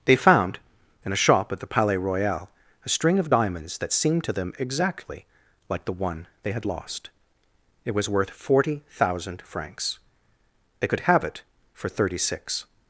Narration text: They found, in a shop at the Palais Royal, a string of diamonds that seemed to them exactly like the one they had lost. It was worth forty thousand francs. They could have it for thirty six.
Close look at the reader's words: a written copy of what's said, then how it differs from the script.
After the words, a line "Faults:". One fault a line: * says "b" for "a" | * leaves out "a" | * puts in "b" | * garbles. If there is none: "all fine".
They found, in a shop at the Palais Royal, a string of diamonds that seemed to them exactly like the one they had lost. It was worth forty thousand francs. They could have it for thirty six.
Faults:
all fine